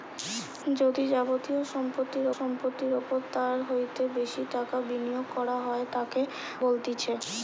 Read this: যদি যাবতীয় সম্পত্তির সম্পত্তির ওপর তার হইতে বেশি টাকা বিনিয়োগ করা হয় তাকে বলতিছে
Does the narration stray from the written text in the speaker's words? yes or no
no